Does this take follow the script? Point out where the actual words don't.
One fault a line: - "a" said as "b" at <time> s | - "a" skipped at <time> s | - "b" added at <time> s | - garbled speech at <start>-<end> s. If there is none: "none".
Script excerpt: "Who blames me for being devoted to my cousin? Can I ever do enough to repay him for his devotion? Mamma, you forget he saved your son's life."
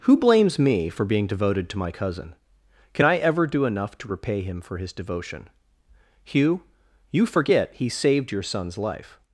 - "Mamma" said as "Hugh" at 6.2 s